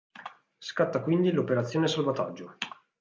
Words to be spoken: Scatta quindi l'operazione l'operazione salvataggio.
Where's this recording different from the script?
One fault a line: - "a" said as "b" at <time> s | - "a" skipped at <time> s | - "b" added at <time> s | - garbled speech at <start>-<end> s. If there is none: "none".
- "l'operazione" skipped at 1.9 s